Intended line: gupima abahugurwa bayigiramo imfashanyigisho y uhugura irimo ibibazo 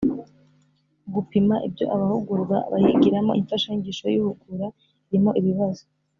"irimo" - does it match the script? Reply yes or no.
yes